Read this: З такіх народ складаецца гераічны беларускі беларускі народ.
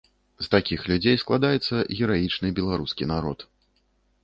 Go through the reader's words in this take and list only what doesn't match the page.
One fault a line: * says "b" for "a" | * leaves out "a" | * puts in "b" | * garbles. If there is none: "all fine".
* says "людзей" for "народ"
* leaves out "беларускі"